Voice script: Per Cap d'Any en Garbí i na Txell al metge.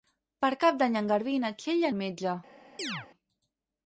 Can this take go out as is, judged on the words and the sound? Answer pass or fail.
fail